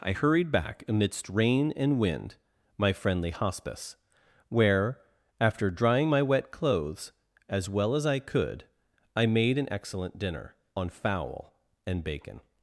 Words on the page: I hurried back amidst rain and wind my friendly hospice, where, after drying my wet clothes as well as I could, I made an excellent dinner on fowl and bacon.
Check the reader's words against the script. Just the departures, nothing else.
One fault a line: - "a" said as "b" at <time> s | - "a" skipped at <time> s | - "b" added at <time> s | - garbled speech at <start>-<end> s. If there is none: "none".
none